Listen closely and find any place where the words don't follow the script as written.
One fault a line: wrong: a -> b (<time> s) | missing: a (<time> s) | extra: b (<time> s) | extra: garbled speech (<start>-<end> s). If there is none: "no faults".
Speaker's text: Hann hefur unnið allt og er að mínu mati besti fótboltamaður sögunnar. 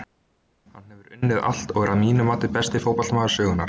no faults